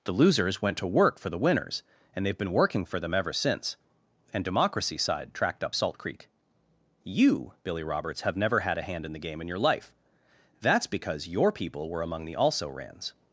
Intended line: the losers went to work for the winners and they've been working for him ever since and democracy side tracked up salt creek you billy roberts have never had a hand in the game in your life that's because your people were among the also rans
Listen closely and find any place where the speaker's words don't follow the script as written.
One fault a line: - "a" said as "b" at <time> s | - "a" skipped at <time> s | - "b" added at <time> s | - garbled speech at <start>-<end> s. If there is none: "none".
- "him" said as "them" at 3.0 s